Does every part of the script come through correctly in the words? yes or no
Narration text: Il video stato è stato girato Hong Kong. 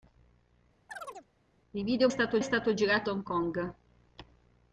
yes